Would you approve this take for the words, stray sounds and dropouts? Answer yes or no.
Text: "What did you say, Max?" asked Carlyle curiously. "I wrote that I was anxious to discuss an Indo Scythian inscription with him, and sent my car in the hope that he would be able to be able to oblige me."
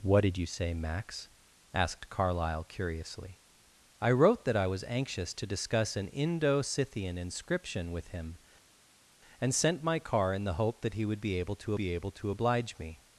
yes